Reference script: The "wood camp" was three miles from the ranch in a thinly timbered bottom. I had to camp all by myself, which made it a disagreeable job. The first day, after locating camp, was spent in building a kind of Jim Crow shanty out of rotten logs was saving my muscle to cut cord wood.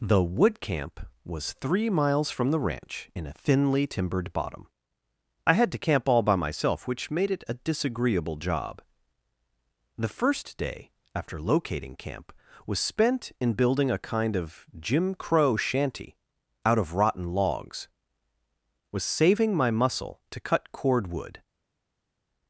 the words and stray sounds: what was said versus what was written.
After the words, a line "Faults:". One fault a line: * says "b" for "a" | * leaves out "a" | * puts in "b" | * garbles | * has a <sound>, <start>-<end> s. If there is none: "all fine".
The "wood camp" was three miles from the ranch in a thinly timbered bottom. I had to camp all by myself, which made it a disagreeable job. The first day, after locating camp, was spent in building a kind of Jim Crow shanty out of rotten logs was saving my muscle to cut cord wood.
Faults:
all fine